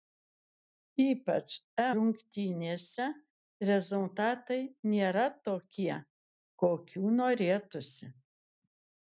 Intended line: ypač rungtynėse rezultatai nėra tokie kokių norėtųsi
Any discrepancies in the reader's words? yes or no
no